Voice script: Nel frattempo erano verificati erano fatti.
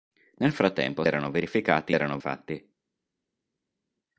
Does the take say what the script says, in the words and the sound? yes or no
yes